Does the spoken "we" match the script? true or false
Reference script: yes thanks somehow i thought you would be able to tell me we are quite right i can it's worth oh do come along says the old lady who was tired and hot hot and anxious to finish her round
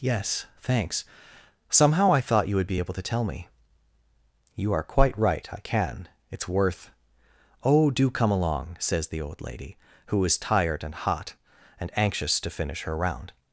false